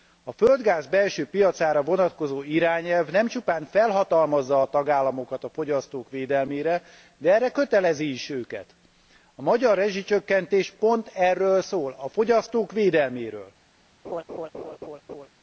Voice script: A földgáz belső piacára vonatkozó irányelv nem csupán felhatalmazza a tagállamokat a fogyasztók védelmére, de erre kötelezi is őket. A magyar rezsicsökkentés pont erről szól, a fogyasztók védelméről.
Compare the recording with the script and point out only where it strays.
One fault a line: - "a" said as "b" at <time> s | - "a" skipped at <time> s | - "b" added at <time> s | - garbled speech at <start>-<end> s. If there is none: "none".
none